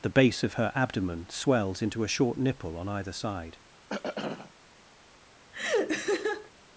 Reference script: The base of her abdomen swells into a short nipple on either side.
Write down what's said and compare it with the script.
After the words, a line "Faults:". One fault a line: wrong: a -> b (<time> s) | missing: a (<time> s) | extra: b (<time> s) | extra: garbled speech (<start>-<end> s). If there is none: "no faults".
The base of her abdomen swells into a short nipple on either side.
Faults:
no faults